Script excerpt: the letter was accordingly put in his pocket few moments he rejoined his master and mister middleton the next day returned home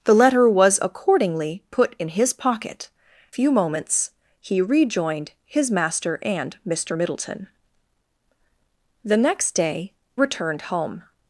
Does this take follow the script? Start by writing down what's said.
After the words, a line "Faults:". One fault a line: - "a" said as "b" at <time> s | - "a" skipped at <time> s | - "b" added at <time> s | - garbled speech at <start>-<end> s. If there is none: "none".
the letter was accordingly put in his pocket few moments he rejoined his master and mister middleton the next day returned home
Faults:
none